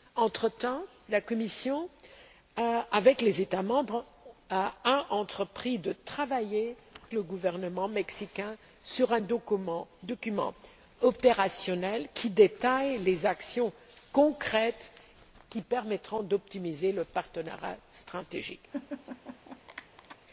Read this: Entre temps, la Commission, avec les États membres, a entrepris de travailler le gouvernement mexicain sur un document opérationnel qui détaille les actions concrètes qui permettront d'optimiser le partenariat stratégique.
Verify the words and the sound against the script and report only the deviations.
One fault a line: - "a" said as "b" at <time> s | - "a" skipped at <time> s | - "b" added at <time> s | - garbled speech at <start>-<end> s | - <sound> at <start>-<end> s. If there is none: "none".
- laugh at 18.7-20.2 s